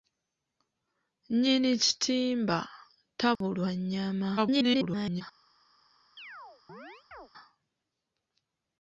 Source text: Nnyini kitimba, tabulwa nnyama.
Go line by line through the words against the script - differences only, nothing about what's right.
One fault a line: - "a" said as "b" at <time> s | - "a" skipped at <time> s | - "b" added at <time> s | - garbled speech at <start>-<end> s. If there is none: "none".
- garbled speech at 4.4-5.2 s